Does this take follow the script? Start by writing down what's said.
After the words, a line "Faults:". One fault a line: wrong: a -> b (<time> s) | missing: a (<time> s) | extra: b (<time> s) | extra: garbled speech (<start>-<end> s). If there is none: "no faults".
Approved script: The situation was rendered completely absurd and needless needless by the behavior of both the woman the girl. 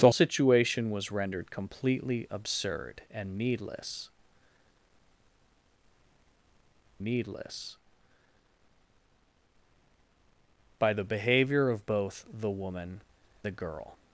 The situation was rendered completely absurd and needless needless by the behavior of both the woman the girl.
Faults:
no faults